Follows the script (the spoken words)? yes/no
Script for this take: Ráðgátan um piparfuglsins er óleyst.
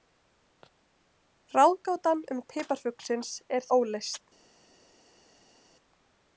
yes